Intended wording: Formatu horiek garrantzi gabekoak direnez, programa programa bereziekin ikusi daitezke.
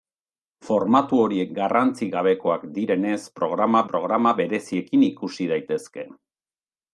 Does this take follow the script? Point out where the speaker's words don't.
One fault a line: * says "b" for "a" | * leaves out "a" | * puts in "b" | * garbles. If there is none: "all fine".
all fine